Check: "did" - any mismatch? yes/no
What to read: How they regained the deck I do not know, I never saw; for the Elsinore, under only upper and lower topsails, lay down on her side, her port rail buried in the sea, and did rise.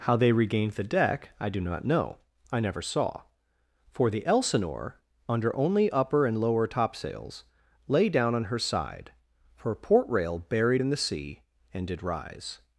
no